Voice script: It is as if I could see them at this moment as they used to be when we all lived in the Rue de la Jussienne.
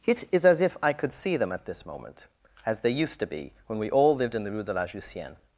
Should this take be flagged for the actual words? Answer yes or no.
no